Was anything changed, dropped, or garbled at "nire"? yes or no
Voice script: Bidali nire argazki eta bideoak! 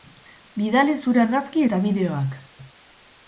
yes